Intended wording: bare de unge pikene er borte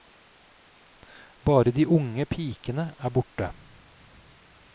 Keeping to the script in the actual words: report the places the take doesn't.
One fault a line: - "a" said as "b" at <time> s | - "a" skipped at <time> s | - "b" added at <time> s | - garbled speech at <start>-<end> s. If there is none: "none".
none